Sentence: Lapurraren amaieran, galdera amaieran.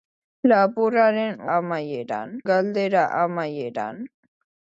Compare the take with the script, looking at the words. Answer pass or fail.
pass